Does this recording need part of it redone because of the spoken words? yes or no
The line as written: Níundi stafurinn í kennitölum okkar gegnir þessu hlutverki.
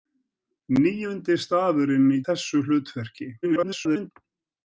yes